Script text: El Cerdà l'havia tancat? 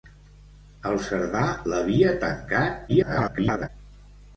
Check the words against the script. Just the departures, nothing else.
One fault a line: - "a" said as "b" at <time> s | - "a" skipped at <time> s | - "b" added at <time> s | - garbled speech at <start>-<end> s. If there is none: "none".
- garbled speech at 2.9-3.7 s